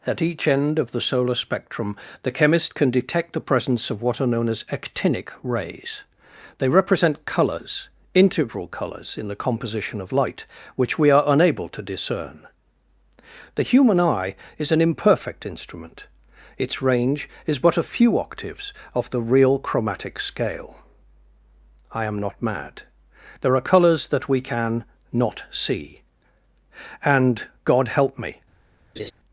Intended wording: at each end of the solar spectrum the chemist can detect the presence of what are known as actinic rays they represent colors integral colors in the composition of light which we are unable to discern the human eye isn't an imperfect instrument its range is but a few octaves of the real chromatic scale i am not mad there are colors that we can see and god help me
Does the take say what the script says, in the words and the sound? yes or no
no